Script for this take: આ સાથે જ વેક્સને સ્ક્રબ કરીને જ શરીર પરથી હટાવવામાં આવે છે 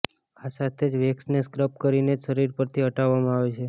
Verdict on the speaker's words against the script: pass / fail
pass